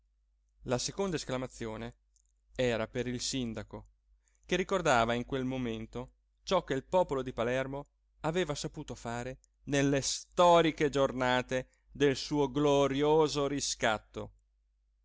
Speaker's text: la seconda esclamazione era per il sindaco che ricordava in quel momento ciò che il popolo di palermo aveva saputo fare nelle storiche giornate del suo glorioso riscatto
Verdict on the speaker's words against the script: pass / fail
pass